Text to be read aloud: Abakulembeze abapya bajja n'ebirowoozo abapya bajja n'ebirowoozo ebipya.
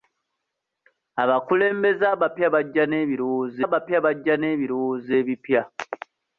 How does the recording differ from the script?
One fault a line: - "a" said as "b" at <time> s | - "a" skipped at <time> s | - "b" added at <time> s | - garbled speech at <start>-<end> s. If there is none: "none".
none